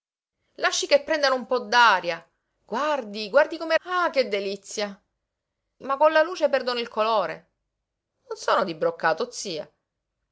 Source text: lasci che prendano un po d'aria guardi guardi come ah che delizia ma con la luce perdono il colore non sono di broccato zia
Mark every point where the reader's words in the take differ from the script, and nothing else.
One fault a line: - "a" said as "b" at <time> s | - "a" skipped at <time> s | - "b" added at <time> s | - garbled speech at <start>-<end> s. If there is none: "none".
none